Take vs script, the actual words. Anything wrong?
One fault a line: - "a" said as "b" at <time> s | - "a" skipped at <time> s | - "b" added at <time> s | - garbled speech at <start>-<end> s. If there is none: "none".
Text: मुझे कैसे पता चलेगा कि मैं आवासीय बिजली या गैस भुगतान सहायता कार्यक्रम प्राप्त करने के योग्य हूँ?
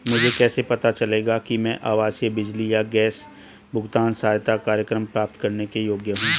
none